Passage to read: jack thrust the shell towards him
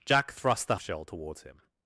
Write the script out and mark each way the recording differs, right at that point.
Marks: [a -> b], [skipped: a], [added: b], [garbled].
jack thrust the shell towards him